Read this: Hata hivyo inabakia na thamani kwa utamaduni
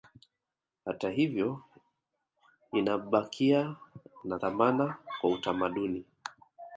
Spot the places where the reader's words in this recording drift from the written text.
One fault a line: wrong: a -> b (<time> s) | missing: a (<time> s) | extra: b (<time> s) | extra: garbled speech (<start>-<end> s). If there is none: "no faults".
no faults